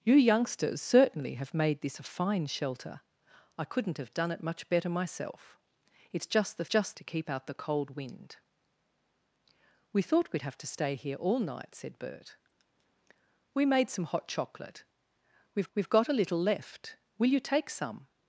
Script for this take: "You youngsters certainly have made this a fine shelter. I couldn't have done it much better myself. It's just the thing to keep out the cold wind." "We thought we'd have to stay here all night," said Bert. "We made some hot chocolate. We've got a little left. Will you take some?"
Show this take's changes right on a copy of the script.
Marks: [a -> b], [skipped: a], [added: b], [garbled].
"You youngsters certainly have made this a fine shelter. I couldn't have done it much better myself. It's just the [thing -> just] to keep out the cold wind." "We thought we'd have to stay here all night," said Bert. "We made some hot chocolate. We've [added: we've] got a little left. Will you take some?"